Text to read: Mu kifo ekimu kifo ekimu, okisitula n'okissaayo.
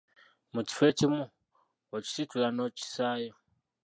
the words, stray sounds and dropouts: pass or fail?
fail